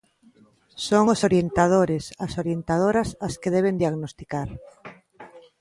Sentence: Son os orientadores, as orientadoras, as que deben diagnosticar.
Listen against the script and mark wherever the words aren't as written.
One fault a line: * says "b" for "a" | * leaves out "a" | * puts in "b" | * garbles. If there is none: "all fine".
all fine